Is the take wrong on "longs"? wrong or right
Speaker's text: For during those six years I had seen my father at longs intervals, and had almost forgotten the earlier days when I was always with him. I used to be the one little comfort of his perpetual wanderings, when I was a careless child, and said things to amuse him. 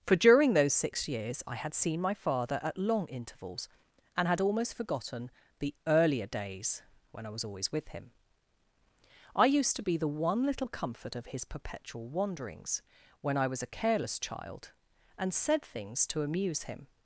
wrong